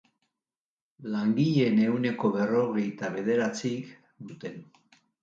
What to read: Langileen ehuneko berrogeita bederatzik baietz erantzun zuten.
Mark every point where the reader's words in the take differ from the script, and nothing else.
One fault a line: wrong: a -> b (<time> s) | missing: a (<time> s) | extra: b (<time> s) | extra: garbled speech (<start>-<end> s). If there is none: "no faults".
missing: baietz erantzun (4.0 s)